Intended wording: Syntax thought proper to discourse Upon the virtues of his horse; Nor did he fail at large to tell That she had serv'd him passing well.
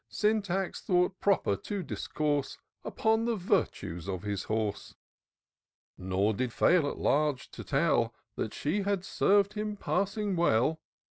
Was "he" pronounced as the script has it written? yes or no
no